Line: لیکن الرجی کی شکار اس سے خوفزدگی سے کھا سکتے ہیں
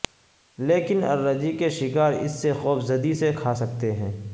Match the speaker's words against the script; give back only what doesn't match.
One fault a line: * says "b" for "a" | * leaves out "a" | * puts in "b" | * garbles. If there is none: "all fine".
* says "کے" for "کی"